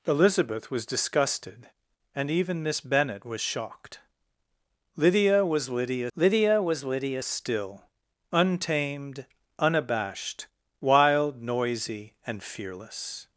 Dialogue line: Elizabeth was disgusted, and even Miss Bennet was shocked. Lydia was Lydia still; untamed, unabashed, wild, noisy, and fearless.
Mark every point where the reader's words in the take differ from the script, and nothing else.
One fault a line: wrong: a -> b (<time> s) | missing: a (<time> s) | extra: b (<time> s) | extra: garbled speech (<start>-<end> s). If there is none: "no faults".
extra: lydia was Lydia (6.2 s)